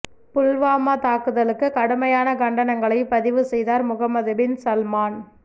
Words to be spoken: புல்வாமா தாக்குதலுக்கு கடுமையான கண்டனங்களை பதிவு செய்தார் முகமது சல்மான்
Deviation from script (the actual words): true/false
true